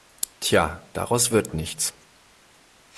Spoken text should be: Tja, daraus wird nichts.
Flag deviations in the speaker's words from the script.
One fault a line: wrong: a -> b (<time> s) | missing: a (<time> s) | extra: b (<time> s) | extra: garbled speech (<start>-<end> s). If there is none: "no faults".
no faults